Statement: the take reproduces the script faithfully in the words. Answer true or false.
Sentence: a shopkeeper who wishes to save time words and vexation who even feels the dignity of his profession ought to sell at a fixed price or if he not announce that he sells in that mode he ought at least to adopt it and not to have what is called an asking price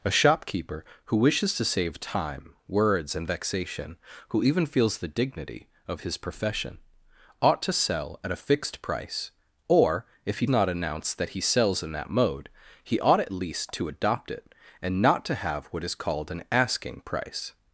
true